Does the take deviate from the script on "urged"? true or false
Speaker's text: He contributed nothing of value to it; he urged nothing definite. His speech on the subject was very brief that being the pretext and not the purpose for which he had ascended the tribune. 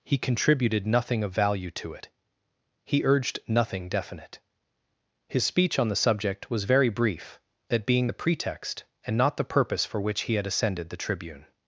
false